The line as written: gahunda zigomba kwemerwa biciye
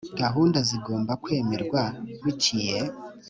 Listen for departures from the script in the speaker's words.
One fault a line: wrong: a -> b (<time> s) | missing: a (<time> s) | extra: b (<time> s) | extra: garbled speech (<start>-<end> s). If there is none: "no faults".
no faults